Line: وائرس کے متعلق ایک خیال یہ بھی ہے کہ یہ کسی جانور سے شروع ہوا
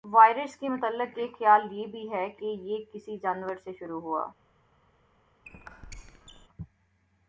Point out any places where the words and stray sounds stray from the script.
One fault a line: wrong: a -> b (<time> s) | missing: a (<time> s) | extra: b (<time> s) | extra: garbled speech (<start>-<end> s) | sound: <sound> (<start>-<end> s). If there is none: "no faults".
sound: squeak (5.4-6.5 s)